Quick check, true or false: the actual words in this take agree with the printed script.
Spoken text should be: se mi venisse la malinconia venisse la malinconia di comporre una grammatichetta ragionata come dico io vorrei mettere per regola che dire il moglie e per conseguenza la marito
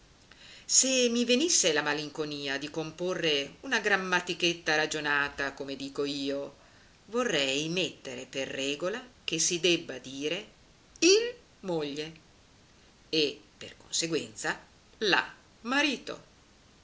false